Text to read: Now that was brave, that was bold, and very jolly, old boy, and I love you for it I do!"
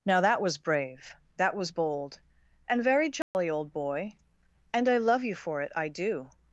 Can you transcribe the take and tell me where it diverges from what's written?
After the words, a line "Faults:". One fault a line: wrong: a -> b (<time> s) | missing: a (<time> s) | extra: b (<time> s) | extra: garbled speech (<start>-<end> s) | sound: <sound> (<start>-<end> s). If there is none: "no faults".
Now that was brave, that was bold, and very jolly, old boy, and I love you for it I do!"
Faults:
sound: dropout (3.2-3.3 s)